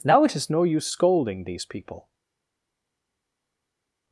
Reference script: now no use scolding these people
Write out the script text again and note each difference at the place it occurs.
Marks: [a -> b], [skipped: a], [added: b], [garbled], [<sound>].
now [added: it is] no use scolding these people